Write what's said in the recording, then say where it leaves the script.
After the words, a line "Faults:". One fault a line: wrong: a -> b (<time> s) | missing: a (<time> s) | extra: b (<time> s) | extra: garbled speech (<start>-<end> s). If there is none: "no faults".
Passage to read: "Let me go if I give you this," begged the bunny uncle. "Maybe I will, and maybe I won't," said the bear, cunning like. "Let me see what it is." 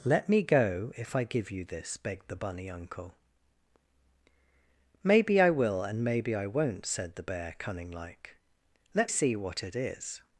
"Let me go if I give you this," begged the bunny uncle. "Maybe I will, and maybe I won't," said the bear, cunning like. "Let see what it is."
Faults:
missing: me (9.1 s)